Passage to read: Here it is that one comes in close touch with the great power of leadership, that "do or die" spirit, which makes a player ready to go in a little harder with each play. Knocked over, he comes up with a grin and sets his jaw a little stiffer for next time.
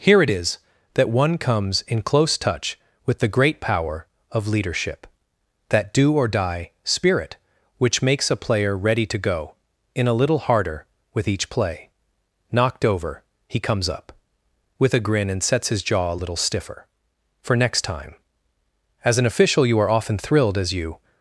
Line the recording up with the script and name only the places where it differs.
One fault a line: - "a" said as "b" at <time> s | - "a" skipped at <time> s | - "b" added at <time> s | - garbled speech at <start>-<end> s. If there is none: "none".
- "As an official you are often thrilled as you" added at 19.0 s